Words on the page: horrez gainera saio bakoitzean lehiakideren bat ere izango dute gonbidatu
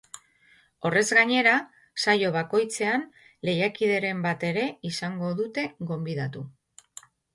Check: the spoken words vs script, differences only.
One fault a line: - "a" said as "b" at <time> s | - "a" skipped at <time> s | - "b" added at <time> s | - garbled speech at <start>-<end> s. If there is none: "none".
none